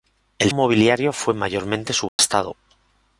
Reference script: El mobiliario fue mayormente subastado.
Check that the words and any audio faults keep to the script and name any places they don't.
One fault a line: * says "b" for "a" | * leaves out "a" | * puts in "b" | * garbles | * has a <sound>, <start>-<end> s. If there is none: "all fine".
* has a dropout, 2.1-2.2 s